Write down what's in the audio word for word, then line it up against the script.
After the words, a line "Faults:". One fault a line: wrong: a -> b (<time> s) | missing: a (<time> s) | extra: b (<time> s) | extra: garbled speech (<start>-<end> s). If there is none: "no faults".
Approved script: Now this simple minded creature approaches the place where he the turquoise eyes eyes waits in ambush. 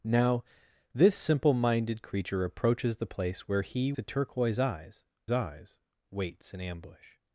Now this simple minded creature approaches the place where he the turquoise eyes eyes waits in ambush.
Faults:
no faults